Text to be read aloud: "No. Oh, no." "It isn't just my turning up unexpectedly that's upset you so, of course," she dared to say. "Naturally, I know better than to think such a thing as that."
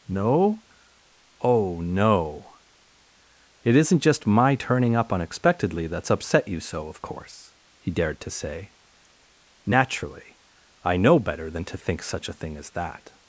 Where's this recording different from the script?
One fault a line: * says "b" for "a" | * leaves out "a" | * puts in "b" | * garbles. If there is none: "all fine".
* says "he" for "she"